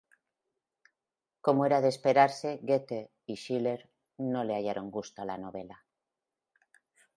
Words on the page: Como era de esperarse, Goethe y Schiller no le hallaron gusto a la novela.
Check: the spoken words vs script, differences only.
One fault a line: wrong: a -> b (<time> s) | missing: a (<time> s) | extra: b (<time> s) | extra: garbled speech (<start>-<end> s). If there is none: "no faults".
no faults